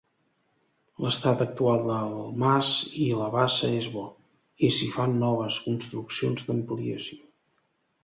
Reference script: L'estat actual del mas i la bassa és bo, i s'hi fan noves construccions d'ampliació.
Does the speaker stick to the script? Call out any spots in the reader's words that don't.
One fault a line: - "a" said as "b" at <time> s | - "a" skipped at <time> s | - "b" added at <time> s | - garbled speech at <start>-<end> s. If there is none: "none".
none